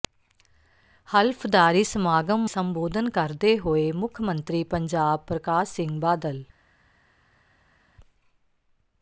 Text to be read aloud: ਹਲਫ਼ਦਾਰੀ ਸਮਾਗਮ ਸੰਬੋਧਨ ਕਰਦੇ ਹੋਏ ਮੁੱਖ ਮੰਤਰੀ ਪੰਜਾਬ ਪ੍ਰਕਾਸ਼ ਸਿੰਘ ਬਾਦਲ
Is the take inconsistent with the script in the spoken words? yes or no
no